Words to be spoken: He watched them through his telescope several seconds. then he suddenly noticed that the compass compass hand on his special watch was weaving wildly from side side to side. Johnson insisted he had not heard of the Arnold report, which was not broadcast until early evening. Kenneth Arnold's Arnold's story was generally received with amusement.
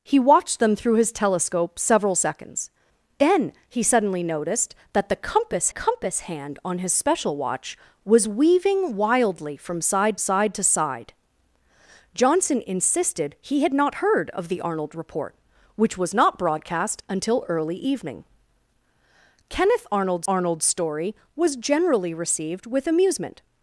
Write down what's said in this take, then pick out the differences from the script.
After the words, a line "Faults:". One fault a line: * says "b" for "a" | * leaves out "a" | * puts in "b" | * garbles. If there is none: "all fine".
He watched them through his telescope several seconds. then he suddenly noticed that the compass compass hand on his special watch was weaving wildly from side side to side. Johnson insisted he had not heard of the Arnold report, which was not broadcast until early evening. Kenneth Arnold's Arnold's story was generally received with amusement.
Faults:
all fine